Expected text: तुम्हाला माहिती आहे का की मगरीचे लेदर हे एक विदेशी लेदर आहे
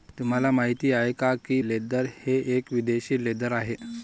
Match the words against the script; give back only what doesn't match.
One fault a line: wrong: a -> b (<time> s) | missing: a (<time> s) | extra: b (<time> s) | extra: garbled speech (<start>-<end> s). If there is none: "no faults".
missing: मगरीचे (1.6 s)